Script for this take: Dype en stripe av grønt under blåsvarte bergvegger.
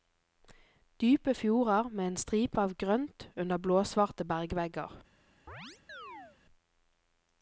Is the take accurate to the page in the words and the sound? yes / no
no